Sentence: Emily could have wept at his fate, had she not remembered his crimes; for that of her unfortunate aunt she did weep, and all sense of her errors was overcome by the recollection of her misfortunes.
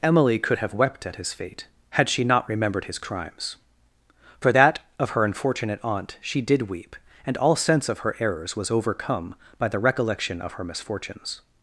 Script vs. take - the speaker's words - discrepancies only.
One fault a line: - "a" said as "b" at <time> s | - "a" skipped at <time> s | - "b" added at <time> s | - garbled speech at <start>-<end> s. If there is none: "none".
none